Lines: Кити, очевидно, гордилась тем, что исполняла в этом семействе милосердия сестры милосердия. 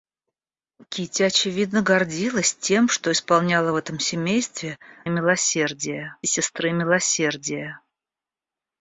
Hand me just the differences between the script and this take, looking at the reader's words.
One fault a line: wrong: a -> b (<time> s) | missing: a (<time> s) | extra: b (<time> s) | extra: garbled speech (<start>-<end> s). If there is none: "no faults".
no faults